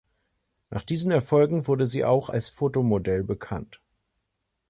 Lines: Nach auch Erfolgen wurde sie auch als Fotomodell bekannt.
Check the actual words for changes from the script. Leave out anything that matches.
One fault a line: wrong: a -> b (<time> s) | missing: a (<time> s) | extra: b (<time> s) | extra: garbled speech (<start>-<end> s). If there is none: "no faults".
wrong: auch -> diesen (0.8 s)